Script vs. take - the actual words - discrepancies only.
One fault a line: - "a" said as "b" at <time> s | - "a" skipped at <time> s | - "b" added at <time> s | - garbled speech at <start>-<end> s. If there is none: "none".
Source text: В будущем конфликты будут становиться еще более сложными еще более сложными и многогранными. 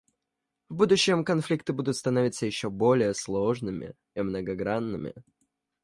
- "еще более сложными" skipped at 3.9 s